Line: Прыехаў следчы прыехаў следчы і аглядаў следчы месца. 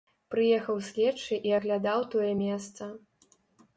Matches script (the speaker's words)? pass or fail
fail